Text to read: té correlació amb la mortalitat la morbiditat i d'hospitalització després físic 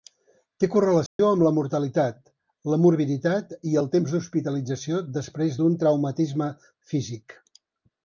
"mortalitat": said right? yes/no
yes